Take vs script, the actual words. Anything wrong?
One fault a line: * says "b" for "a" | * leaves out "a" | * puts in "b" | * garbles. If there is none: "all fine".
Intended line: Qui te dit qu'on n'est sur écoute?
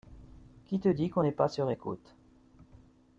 * puts in "pas"